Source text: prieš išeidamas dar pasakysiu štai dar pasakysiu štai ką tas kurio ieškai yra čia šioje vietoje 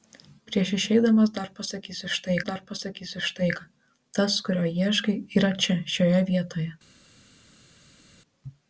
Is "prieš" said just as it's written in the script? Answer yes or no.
yes